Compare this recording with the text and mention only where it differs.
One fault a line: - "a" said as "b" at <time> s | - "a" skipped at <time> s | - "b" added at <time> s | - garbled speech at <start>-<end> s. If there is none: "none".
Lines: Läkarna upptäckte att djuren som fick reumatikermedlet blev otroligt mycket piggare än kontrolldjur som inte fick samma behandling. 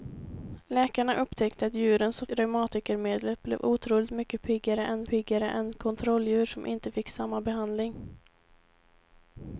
- "fick" skipped at 2.3 s
- "piggare än" added at 5.1 s